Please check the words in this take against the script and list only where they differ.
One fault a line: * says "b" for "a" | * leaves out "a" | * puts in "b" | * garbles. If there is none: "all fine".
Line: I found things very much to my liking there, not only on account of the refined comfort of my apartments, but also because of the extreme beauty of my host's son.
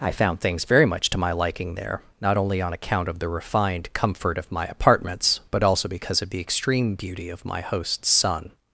all fine